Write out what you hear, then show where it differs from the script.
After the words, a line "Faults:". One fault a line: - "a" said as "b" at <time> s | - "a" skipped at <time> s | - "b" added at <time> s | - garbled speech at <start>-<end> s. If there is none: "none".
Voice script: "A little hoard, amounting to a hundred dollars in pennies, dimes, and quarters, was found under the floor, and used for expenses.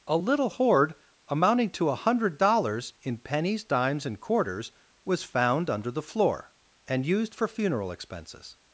"A little hoard, amounting to a hundred dollars in pennies, dimes, and quarters, was found under the floor, and used for funeral expenses.
Faults:
- "funeral" added at 7.5 s